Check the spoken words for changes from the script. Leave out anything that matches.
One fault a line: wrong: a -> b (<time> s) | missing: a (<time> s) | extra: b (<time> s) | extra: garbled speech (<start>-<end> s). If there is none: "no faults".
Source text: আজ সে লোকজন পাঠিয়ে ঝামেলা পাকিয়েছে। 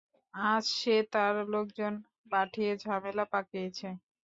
extra: তার (1.1 s)